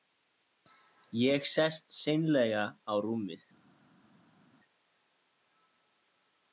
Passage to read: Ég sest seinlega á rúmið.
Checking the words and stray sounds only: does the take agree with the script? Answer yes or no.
yes